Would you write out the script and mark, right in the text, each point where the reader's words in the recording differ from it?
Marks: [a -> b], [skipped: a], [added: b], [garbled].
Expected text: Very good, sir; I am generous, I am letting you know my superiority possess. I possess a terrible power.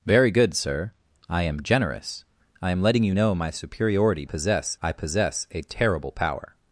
Very good, sir; I am generous, I am letting you know my superiority possess. I possess a terrible power.